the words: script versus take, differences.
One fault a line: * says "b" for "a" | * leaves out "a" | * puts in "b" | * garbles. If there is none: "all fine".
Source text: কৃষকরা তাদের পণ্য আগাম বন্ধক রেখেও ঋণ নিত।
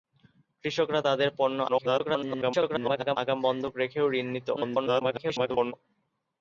* garbles
* garbles